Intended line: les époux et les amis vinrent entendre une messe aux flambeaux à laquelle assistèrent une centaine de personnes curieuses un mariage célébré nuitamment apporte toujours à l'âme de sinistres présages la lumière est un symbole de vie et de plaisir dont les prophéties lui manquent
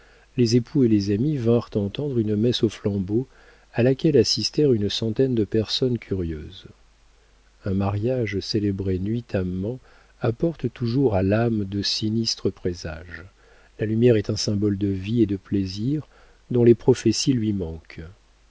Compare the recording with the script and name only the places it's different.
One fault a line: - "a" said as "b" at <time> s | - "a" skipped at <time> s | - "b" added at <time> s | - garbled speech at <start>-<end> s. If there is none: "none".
none